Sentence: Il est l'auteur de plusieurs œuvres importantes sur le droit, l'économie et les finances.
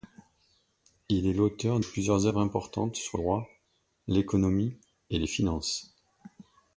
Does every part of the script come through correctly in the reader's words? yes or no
no